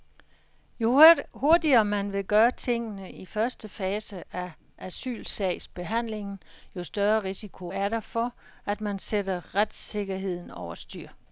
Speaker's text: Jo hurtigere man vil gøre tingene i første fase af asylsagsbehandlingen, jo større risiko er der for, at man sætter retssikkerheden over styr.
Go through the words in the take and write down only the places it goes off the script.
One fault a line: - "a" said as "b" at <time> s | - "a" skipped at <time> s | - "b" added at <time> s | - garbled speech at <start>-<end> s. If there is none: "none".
none